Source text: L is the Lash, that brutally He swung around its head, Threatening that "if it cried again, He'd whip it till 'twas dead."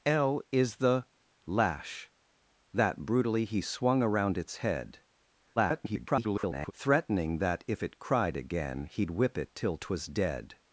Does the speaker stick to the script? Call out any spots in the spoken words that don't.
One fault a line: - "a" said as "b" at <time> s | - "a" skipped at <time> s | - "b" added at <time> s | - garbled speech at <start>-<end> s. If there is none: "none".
- garbled speech at 5.6-6.7 s